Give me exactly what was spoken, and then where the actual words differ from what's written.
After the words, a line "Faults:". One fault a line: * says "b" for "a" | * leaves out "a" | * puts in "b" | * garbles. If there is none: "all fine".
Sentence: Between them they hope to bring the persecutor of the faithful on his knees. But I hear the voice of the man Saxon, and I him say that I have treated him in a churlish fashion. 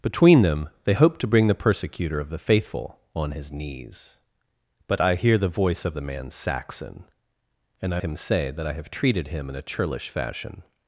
Between them they hope to bring the persecutor of the faithful on his knees. But I hear the voice of the man Saxon, and I him say that I have treated him in a churlish fashion.
Faults:
all fine